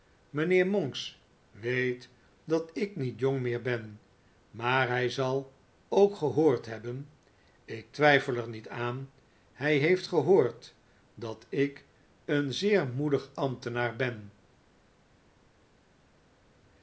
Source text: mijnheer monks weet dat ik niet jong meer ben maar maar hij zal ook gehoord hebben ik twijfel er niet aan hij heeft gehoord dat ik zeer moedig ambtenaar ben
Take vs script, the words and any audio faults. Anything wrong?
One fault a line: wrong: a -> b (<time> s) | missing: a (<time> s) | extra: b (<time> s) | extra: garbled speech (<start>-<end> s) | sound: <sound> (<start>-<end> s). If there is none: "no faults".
missing: maar (4.9 s)
extra: een (12.2 s)